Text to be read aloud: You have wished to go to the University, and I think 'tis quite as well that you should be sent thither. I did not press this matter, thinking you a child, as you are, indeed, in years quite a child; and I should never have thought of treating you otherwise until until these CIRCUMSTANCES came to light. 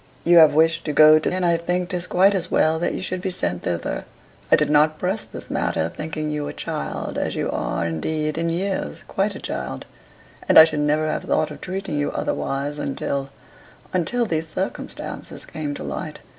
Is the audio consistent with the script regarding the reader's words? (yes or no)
no